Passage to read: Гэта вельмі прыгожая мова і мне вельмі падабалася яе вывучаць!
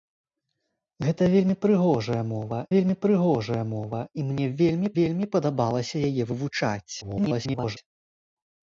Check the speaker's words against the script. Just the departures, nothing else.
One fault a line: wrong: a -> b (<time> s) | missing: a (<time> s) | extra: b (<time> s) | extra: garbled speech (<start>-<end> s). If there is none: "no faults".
extra: вельмі прыгожая мова (2.7 s)
extra: вельмі (5.0 s)
extra: garbled speech (7.0-7.8 s)